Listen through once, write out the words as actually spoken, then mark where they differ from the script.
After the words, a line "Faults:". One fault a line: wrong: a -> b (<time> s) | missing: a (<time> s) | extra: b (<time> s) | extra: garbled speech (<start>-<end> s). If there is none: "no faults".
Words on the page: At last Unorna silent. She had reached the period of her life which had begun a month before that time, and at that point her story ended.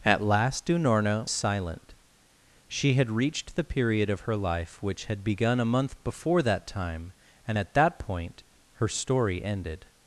At last Unorna silent. She had reached the period of her life which had begun a month before that time, and at that point her story ended.
Faults:
no faults